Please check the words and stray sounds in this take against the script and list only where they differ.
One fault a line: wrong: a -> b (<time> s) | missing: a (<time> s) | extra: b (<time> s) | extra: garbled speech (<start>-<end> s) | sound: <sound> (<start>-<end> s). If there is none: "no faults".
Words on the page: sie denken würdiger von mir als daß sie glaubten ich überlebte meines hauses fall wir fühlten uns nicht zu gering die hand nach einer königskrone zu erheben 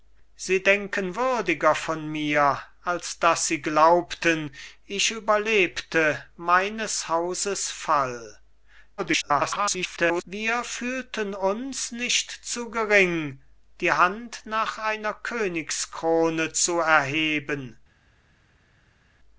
extra: garbled speech (9.0-10.2 s)